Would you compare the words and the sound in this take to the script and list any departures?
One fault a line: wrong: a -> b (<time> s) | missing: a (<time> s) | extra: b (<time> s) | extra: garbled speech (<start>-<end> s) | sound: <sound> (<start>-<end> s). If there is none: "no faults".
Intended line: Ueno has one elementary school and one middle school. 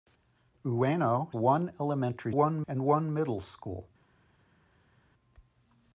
missing: has (1.3 s)
wrong: school -> one (2.3 s)